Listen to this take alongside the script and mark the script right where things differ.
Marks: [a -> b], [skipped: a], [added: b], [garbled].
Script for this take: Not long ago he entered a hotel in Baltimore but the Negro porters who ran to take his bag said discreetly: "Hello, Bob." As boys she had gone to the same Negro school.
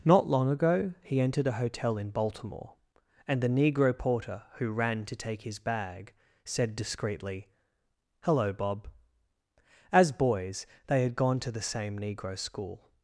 Not long ago he entered a hotel in Baltimore [but -> and] the Negro [porters -> porter] who ran to take his bag said discreetly: "Hello, Bob." As boys [she -> they] had gone to the same Negro school.